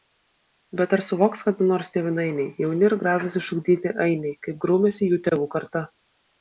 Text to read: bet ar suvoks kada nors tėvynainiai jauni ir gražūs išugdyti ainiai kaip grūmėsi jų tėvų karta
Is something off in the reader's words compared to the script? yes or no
no